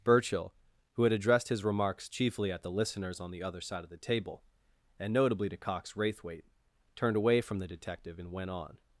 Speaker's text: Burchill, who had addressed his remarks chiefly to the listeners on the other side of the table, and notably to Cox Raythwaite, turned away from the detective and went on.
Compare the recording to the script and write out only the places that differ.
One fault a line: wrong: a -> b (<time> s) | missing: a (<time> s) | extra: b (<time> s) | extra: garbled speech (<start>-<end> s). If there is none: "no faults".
wrong: to -> at (2.5 s)